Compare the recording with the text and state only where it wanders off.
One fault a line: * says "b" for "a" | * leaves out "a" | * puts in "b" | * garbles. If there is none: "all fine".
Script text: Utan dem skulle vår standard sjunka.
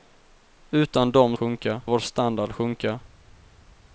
* says "sjunka" for "skulle"